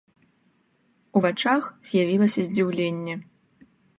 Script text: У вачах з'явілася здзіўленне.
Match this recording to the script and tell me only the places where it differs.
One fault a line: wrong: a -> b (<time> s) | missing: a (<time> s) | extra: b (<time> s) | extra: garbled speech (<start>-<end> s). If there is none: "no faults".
no faults